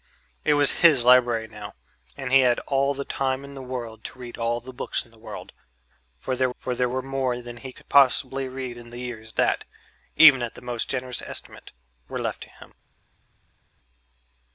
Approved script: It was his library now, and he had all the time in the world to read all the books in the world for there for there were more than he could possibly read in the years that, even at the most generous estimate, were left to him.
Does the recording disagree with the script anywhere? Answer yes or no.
no